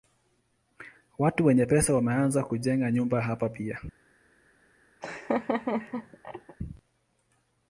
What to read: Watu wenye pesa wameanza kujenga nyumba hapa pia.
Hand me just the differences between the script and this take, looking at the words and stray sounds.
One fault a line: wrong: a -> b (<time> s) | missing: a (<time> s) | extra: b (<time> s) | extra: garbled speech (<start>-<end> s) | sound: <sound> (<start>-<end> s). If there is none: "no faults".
sound: laugh (5.0-6.6 s)